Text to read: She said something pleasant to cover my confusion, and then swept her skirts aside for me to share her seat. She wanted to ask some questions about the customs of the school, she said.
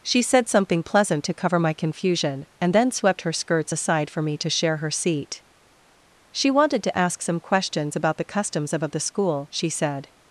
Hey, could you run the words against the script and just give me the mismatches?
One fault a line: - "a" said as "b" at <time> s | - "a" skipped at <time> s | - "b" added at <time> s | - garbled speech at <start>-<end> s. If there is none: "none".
- "of" added at 8.8 s